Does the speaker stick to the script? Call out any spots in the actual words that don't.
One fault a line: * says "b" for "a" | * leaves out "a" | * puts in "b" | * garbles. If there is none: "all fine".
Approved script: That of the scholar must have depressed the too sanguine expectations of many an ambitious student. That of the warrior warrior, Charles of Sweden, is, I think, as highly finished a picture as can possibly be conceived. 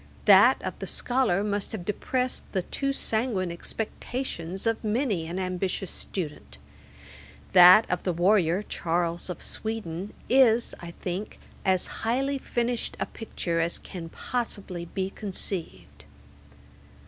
* leaves out "warrior"